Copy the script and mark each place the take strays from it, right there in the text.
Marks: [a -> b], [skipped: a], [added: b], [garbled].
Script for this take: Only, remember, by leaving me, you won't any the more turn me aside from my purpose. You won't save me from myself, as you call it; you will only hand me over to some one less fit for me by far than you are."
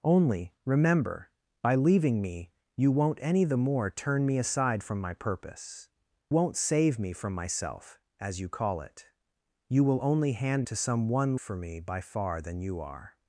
Only, remember, by leaving me, you won't any the more turn me aside from my purpose. [skipped: You] won't save me from myself, as you call it; you will only hand [skipped: me over] to some one [skipped: less fit] for me by far than you are."